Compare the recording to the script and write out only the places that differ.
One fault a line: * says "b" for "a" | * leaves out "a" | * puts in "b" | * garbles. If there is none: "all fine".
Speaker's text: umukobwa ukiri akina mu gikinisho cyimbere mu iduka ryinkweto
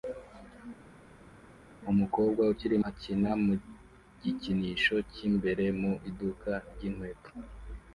all fine